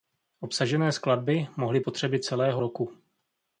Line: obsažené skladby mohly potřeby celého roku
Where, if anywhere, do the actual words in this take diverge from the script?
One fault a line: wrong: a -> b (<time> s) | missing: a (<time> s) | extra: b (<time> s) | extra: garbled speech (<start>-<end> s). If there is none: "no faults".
no faults